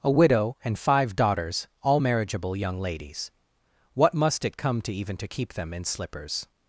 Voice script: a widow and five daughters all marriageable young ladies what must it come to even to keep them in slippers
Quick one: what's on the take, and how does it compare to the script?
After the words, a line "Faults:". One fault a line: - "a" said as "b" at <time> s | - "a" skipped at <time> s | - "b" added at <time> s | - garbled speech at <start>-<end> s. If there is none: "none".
a widow and five daughters all marriageable young ladies what must it come to even to keep them in slippers
Faults:
none